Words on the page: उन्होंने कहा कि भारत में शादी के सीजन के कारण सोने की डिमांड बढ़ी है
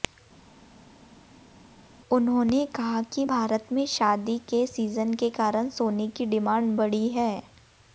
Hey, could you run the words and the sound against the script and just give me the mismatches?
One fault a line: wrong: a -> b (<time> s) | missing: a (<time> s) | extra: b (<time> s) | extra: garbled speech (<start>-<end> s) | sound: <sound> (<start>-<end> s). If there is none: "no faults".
no faults